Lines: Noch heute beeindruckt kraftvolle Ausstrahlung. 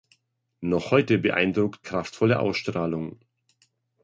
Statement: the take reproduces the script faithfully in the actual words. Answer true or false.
true